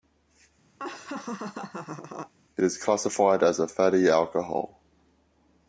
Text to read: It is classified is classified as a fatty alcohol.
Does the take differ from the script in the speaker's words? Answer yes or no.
yes